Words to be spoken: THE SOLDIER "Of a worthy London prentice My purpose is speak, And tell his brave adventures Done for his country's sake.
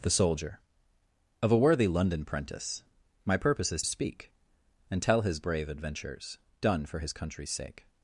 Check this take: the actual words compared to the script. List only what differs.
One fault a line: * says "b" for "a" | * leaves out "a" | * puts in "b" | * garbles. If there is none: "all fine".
all fine